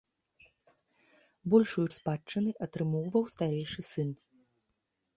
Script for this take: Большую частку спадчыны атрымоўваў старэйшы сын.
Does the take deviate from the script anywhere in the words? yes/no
yes